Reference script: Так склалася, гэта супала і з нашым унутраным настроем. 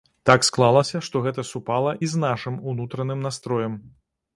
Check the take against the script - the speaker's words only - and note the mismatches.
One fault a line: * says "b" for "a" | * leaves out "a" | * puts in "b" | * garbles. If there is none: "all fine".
* puts in "што"